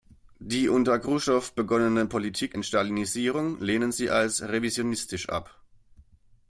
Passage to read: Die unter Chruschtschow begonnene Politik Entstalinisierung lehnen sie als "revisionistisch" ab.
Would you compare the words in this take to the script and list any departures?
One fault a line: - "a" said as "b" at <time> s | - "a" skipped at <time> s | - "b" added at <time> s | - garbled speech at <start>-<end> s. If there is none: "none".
none